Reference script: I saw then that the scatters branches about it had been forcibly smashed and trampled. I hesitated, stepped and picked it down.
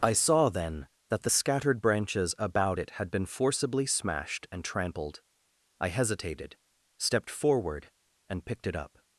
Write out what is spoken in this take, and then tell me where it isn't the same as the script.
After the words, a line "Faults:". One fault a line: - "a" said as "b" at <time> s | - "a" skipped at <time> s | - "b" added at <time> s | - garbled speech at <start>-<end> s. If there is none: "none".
I saw then that the scattered branches about it had been forcibly smashed and trampled. I hesitated, stepped forward, and picked it up.
Faults:
- "scatters" said as "scattered" at 1.3 s
- "forward" added at 7.3 s
- "down" said as "up" at 8.7 s